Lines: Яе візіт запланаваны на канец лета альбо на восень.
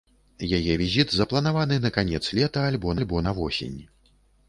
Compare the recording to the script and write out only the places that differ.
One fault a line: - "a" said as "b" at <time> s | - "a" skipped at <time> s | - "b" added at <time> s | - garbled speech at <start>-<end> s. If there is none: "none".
- "альбо" added at 3.0 s